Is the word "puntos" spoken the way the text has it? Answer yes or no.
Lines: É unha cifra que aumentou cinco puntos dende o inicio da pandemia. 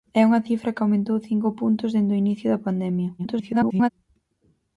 yes